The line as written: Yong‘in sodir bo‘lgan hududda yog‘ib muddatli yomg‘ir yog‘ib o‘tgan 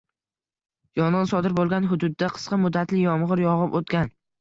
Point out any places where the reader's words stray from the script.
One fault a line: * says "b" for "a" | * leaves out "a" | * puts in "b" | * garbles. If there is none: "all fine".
* says "qisqa" for "yog‘ib"